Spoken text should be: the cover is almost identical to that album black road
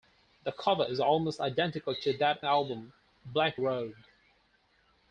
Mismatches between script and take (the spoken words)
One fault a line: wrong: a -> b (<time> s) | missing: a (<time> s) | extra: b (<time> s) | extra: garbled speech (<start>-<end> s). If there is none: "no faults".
no faults